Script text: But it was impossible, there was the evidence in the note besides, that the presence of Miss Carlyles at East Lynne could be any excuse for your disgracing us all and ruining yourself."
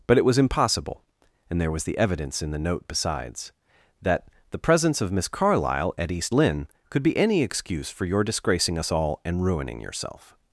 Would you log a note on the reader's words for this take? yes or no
yes